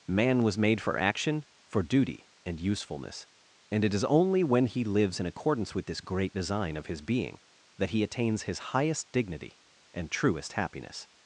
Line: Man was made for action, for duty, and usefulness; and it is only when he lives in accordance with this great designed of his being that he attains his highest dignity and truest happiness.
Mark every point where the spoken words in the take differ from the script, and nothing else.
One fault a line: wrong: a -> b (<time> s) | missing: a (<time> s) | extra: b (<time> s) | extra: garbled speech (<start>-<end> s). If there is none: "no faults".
wrong: designed -> design (6.3 s)